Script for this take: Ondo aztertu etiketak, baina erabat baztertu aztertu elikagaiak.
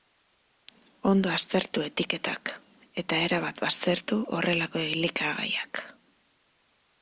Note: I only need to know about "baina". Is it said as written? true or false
false